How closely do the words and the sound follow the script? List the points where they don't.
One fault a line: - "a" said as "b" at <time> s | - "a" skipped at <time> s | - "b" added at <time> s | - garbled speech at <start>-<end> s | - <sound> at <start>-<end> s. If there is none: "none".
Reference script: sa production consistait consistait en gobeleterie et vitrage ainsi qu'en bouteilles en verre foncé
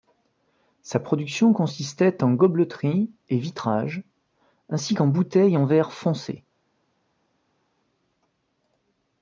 - "consistait" skipped at 2.2 s